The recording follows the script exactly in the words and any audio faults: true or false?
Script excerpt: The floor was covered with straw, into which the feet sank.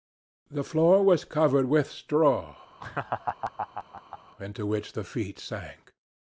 false